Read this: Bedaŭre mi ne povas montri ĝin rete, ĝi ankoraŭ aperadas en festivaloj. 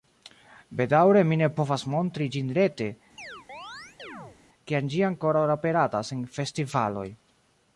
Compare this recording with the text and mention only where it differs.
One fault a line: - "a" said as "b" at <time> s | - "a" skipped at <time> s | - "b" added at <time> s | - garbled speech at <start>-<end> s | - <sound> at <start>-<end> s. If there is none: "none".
- chirp at 3.2-4.4 s
- "kiam" added at 4.7 s